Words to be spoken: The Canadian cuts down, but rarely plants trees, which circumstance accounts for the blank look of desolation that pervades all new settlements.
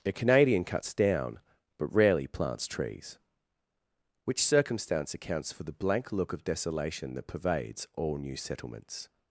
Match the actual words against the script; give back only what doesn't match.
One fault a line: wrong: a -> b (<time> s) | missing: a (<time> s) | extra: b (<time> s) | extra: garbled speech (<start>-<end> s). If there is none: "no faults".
wrong: The -> A (0.0 s)